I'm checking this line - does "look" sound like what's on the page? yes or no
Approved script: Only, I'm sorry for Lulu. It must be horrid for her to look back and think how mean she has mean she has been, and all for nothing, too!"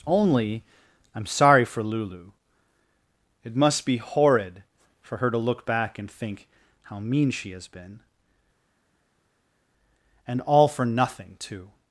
yes